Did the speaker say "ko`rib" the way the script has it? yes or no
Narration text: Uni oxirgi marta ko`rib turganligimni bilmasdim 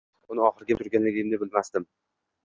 no